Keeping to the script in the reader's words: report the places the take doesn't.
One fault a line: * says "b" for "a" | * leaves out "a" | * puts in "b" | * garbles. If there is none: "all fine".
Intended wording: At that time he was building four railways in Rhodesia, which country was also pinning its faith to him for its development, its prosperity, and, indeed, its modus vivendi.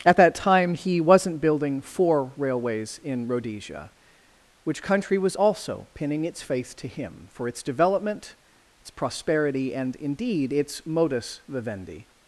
* says "wasn't" for "was"